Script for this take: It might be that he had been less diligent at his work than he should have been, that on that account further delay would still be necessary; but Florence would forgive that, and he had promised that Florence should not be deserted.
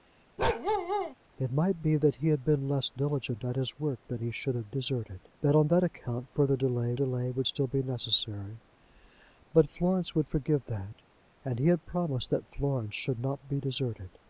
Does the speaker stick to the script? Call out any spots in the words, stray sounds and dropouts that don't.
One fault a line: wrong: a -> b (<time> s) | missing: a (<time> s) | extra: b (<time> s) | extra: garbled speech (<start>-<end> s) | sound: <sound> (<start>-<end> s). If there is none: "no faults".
sound: bark (0.4-1.1 s)
wrong: been -> deserted (4.7 s)
extra: delay (6.9 s)